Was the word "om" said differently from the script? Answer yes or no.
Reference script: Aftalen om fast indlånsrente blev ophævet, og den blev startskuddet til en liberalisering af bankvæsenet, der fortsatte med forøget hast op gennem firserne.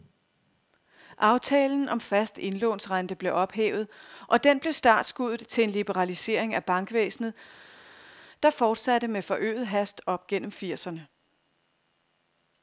no